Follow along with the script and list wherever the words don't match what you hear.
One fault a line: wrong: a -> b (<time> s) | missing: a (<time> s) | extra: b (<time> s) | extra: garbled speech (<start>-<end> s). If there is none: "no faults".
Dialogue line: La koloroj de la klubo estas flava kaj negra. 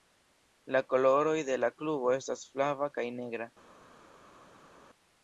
no faults